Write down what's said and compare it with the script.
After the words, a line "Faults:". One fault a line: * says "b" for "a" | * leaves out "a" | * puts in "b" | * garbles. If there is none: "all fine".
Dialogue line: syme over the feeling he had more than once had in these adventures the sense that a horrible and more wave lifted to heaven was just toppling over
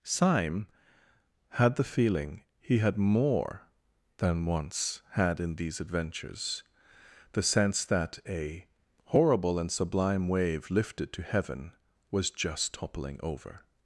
syme had the feeling he had more than once had in these adventures the sense that a horrible and sublime wave lifted to heaven was just toppling over
Faults:
* says "had" for "over"
* says "sublime" for "more"